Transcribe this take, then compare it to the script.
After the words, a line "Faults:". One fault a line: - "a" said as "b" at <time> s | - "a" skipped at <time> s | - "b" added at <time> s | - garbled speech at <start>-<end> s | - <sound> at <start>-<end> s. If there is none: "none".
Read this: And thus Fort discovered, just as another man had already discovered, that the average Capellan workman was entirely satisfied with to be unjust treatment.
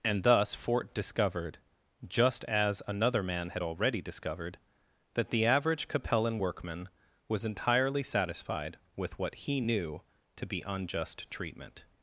And thus Fort discovered, just as another man had already discovered, that the average Capellan workman was entirely satisfied with what he knew to be unjust treatment.
Faults:
- "what he knew" added at 9.2 s